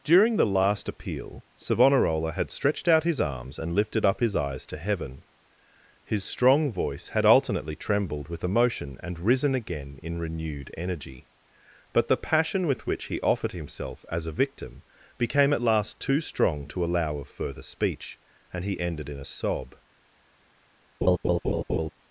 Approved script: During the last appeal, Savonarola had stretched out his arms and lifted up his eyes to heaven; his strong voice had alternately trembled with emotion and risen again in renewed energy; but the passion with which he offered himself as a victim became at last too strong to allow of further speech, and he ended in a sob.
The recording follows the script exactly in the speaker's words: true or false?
true